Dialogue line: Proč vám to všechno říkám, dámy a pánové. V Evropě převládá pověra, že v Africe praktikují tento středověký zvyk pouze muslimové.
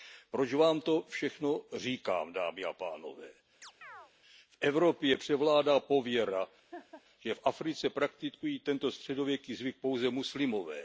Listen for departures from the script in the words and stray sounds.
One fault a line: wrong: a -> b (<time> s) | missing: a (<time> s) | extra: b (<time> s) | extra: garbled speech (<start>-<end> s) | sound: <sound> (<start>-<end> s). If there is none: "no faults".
sound: chirp (3.6-4.1 s)
sound: laugh (6.7-7.0 s)